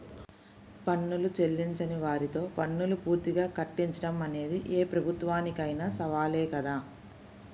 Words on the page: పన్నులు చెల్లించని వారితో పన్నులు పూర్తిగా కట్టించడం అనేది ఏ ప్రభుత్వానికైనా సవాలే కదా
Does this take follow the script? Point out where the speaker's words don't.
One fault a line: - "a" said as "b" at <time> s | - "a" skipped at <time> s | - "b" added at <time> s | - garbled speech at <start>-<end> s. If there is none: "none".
none